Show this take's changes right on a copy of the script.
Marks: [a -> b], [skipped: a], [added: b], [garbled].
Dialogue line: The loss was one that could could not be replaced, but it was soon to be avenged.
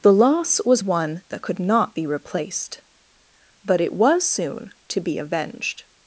The loss was one that could [skipped: could] not be replaced, but it was soon to be avenged.